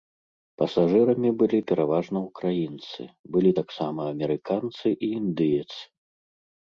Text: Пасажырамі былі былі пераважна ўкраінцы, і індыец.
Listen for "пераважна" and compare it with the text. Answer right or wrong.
wrong